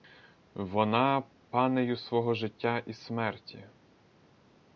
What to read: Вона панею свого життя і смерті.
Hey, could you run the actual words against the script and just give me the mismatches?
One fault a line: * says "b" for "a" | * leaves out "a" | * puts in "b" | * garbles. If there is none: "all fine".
all fine